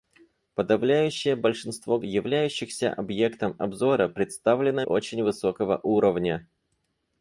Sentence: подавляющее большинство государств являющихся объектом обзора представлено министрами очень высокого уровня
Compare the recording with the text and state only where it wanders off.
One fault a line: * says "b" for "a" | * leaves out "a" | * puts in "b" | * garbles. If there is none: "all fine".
* leaves out "государств"
* leaves out "министрами"